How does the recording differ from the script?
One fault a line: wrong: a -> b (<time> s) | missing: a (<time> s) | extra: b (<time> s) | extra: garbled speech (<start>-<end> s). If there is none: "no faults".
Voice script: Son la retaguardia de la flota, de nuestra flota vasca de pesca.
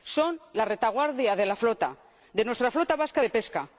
no faults